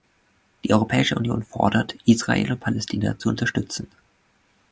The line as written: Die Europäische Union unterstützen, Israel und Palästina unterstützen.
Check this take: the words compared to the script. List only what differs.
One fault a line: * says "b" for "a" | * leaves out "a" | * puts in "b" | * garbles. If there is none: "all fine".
* says "fordert" for "unterstützen"
* puts in "zu"